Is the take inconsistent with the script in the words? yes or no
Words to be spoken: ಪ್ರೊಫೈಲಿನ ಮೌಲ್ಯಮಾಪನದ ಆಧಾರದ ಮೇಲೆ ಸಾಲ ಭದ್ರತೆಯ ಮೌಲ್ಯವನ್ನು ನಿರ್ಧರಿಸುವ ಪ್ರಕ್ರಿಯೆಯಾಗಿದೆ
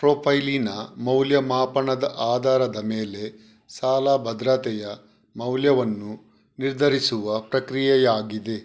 no